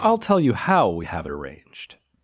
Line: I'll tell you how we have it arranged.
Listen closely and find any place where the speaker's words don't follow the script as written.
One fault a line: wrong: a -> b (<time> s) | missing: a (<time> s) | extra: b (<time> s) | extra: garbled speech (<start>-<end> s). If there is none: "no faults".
no faults